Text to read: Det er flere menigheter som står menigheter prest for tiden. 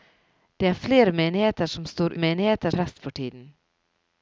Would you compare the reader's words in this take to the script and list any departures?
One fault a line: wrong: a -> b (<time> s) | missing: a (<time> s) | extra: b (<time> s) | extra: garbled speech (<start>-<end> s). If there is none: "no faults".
no faults